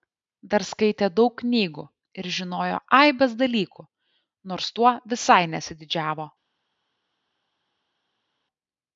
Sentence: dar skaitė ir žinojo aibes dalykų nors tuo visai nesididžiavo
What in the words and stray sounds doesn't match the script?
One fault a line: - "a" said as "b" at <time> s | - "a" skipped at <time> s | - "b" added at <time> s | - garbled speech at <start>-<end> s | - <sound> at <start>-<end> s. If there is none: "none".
- "daug knygų" added at 1.2 s